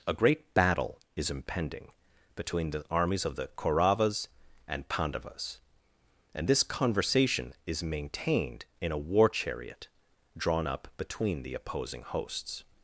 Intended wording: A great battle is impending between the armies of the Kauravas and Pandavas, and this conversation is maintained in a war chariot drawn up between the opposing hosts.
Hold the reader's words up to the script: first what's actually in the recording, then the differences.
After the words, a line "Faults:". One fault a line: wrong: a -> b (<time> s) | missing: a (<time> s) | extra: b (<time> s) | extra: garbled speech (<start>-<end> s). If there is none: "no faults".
A great battle is impending between the armies of the Kauravas and Pandavas, and this conversation is maintained in a war chariot drawn up between the opposing hosts.
Faults:
no faults